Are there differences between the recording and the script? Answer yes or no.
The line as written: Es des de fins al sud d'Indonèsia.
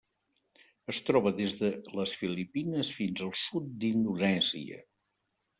yes